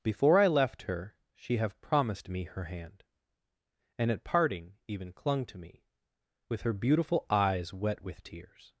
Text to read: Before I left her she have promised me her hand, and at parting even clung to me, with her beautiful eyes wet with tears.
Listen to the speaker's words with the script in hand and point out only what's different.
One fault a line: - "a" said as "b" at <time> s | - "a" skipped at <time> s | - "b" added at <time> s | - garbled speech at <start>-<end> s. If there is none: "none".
none